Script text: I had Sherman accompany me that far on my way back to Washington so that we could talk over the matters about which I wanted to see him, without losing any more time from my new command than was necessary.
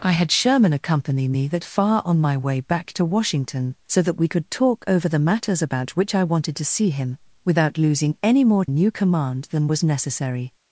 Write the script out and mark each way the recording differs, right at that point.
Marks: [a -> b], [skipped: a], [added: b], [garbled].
I had Sherman accompany me that far on my way back to Washington so that we could talk over the matters about which I wanted to see him, without losing any more [skipped: time from my] new command than was necessary.